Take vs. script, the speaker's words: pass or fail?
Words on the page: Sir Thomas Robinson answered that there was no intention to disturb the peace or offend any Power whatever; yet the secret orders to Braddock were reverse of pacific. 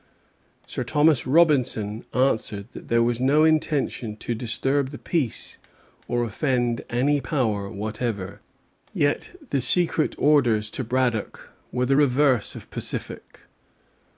fail